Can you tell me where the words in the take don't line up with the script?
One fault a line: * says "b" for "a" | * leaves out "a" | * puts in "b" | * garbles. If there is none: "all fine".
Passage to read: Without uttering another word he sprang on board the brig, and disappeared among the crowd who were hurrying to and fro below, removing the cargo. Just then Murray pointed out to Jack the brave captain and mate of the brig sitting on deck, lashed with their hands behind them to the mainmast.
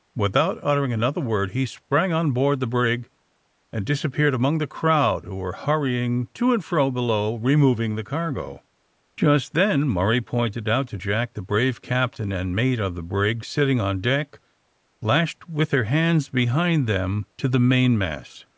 all fine